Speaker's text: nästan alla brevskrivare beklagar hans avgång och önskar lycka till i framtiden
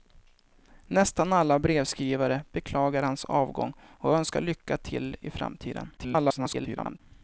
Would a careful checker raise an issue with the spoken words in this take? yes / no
yes